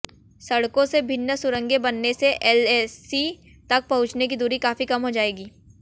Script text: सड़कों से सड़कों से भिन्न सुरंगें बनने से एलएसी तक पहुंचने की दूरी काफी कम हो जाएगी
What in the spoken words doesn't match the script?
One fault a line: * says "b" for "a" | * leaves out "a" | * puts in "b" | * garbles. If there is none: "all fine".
* leaves out "सड़कों से"